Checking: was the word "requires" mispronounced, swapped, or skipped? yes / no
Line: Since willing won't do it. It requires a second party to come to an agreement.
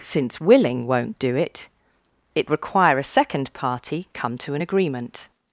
yes